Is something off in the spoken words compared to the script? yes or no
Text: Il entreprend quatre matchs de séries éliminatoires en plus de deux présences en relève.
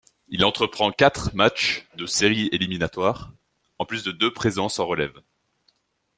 no